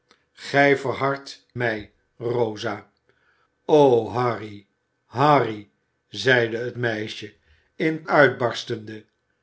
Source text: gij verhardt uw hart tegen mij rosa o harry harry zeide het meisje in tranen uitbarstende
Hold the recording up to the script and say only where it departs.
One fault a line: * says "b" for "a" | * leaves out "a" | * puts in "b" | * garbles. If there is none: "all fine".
* leaves out "uw hart tegen"
* leaves out "tranen"